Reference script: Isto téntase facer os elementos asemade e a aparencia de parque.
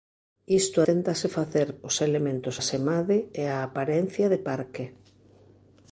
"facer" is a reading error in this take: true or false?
false